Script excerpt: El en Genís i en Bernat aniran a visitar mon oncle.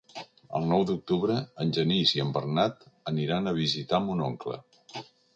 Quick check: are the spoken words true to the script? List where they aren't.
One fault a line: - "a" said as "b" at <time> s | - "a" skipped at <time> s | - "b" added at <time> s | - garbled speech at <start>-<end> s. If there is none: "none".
- "nou d'octubre" added at 0.7 s